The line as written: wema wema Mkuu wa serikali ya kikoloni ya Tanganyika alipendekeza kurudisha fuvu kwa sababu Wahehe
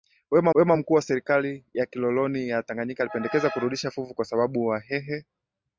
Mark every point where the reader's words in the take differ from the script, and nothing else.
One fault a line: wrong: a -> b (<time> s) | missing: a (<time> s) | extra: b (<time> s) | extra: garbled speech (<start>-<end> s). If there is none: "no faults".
no faults